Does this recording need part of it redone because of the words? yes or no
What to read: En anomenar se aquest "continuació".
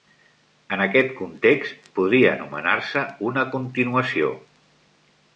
yes